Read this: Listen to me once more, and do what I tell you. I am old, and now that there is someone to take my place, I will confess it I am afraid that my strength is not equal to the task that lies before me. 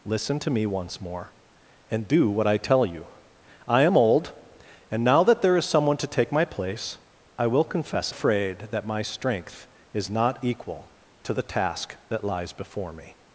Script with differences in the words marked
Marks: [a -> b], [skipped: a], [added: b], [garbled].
Listen to me once more, and do what I tell you. I am old, and now that there is someone to take my place, I will confess [skipped: it I am] afraid that my strength is not equal to the task that lies before me.